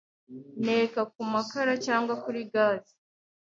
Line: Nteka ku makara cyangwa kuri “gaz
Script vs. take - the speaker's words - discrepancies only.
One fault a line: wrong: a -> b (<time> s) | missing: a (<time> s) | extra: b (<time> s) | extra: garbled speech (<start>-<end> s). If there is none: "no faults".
no faults